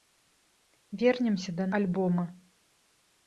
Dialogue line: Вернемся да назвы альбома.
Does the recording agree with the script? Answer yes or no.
no